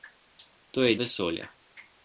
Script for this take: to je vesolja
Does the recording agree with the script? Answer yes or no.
yes